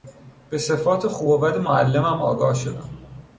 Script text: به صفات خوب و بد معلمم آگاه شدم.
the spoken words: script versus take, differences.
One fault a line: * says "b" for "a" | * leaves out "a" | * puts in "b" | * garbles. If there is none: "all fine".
all fine